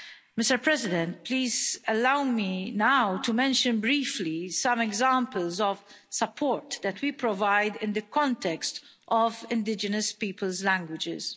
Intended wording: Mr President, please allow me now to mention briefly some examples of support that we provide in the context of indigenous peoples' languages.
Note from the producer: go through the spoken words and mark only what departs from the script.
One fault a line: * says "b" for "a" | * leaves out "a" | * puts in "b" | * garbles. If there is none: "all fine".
all fine